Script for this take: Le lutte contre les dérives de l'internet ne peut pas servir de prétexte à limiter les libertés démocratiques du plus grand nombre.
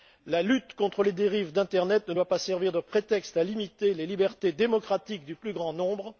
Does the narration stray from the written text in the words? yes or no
yes